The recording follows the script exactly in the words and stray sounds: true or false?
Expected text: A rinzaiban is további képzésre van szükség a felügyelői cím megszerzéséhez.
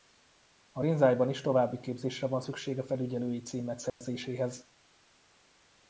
false